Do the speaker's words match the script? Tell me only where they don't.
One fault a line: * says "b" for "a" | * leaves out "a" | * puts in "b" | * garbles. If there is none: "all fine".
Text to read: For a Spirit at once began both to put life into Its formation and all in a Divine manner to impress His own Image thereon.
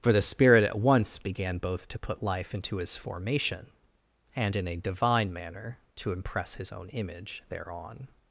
* says "the" for "a"
* says "His" for "Its"
* leaves out "all"